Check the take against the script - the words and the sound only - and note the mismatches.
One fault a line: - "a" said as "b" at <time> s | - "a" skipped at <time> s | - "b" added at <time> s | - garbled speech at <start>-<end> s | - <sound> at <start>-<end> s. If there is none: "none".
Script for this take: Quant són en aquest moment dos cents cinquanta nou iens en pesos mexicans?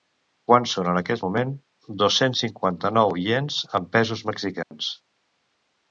- dropout at 4.6-4.7 s